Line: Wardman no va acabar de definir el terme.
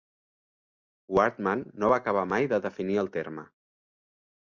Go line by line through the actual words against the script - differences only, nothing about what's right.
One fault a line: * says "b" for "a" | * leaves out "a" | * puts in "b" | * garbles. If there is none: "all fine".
* puts in "mai"